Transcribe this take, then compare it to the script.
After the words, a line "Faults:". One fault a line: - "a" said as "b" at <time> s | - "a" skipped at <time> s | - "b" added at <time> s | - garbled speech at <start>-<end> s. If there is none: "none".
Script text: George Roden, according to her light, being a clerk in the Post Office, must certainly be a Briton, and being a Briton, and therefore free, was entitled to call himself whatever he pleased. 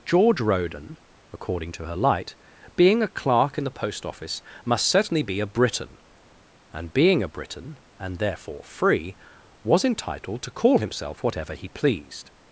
George Roden, according to her light, being a clerk in the Post Office, must certainly be a Briton, and being a Briton, and therefore free, was entitled to call himself whatever he pleased.
Faults:
none